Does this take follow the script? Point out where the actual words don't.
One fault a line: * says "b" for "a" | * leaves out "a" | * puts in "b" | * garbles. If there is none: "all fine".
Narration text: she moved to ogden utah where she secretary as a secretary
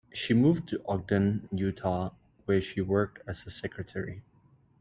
* says "worked" for "secretary"